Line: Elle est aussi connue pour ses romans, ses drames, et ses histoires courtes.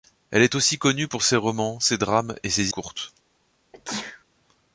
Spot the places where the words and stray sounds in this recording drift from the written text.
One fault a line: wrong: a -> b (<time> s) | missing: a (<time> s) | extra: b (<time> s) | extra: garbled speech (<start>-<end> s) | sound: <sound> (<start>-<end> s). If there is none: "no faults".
missing: histoires (2.7 s)
sound: sneeze (3.7-4.2 s)